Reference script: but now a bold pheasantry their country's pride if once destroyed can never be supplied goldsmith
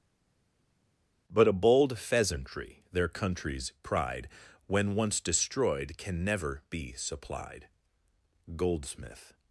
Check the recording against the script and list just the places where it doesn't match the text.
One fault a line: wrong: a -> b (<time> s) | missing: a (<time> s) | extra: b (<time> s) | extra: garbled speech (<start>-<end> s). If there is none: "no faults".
missing: now (1.5 s)
wrong: if -> when (4.7 s)